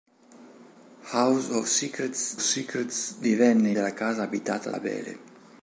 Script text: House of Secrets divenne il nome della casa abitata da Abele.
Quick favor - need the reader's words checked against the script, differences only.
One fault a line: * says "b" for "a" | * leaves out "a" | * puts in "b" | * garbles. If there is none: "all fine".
* puts in "Secrets"
* leaves out "nome"
* leaves out "da"